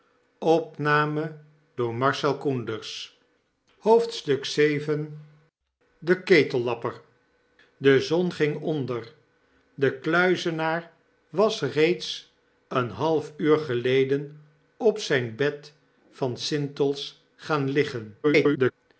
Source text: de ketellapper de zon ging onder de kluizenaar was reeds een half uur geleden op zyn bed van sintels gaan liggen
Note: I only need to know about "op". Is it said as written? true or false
true